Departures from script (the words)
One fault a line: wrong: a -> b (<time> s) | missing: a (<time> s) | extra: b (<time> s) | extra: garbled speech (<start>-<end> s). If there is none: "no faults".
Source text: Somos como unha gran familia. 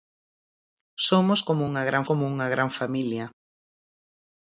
extra: como unha gran (2.1 s)